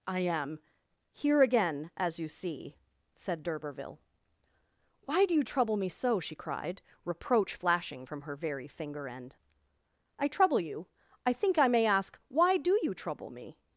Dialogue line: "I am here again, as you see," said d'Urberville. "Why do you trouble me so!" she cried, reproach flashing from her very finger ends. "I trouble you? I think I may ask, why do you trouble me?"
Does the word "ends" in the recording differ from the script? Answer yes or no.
yes